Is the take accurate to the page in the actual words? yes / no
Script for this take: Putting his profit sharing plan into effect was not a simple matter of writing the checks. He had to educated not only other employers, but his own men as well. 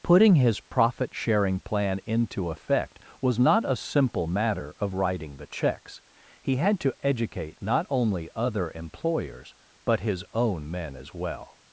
no